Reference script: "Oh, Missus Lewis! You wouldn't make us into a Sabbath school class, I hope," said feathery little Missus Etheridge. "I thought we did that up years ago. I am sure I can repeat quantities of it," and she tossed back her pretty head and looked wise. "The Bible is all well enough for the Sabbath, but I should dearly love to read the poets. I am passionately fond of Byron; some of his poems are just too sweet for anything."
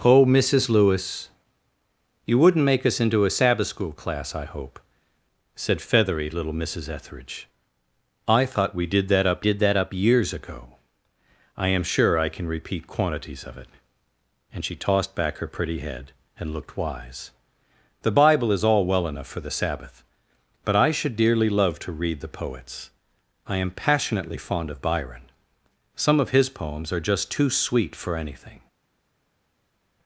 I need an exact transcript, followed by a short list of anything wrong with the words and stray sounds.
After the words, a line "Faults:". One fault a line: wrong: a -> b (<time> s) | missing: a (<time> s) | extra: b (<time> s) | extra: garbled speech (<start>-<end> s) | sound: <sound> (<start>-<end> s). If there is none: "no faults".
"Oh, Missus Lewis! You wouldn't make us into a Sabbath school class, I hope," said feathery little Missus Etheridge. "I thought we did that up did that up years ago. I am sure I can repeat quantities of it," and she tossed back her pretty head and looked wise. "The Bible is all well enough for the Sabbath, but I should dearly love to read the poets. I am passionately fond of Byron; some of his poems are just too sweet for anything."
Faults:
extra: did that up (9.4 s)